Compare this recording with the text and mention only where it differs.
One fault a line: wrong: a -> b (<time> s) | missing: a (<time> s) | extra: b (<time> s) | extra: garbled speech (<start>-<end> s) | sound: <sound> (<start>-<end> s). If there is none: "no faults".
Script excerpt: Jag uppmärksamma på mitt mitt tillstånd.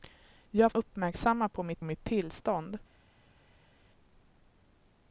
no faults